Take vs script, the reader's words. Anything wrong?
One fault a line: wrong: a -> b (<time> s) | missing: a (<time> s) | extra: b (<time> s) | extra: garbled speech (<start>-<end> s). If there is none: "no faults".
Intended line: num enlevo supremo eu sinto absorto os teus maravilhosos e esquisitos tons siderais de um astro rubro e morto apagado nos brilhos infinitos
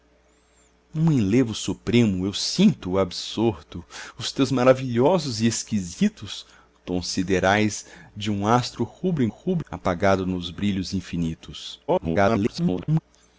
wrong: morto -> rubro (9.3 s)
extra: garbled speech (11.9-13.0 s)